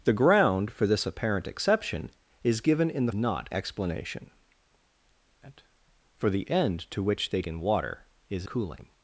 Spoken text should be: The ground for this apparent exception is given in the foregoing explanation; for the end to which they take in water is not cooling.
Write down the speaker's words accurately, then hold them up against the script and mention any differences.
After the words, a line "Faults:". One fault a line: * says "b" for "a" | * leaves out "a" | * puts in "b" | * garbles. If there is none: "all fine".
The ground for this apparent exception is given in the not explanation; for the end to which they in water is cooling.
Faults:
* says "not" for "foregoing"
* leaves out "take"
* leaves out "not"